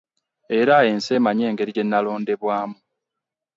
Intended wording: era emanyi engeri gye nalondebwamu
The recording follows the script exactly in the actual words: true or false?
false